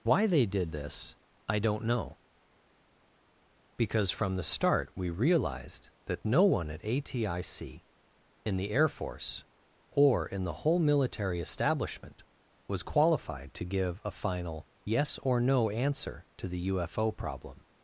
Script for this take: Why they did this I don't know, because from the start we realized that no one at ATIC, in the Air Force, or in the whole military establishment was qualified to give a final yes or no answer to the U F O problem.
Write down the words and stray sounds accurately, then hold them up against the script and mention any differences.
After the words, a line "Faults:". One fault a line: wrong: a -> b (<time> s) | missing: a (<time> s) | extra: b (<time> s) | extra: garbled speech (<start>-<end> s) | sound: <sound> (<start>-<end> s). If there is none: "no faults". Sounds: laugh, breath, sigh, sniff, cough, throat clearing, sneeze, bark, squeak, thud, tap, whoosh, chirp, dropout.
Why they did this I don't know, because from the start we realized that no one at ATIC, in the Air Force, or in the whole military establishment was qualified to give a final yes or no answer to the U F O problem.
Faults:
no faults